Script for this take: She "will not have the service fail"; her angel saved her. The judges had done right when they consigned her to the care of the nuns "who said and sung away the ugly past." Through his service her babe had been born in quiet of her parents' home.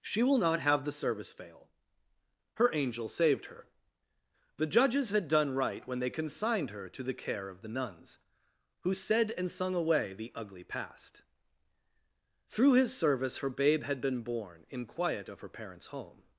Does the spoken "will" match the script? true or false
true